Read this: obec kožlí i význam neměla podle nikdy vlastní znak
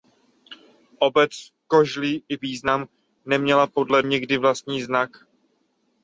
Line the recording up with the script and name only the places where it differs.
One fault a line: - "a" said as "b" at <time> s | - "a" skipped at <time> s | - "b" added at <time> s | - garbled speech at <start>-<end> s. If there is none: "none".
none